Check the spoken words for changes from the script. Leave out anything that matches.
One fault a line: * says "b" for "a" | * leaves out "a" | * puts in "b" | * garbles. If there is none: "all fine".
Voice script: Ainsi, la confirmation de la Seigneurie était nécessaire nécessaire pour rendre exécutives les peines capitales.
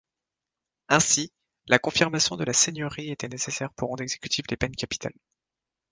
* leaves out "nécessaire"